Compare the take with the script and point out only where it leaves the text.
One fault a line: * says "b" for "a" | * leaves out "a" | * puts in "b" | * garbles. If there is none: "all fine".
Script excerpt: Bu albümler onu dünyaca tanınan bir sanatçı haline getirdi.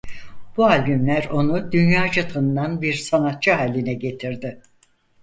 all fine